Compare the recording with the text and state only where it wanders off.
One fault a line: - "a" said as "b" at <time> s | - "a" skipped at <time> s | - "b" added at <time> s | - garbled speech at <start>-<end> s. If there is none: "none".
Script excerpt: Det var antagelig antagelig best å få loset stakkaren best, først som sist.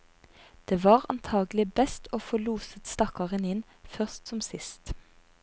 - "antagelig" skipped at 1.6 s
- "best" said as "inn" at 3.5 s